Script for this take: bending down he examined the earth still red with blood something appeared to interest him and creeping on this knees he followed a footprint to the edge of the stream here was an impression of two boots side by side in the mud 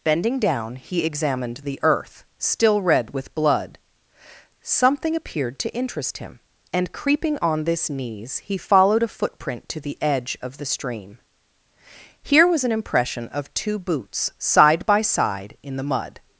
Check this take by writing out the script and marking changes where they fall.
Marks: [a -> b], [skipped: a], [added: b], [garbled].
bending down he examined the earth still red with blood something appeared to interest him and creeping on this knees he followed a footprint to the edge of the stream here was an impression of two boots side by side in the mud